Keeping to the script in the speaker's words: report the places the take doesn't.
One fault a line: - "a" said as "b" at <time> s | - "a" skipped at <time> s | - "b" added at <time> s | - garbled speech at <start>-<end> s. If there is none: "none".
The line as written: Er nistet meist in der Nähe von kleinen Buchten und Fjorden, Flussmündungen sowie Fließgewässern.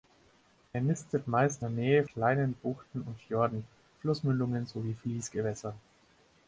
- "in" skipped at 1.6 s
- "von" skipped at 2.0 s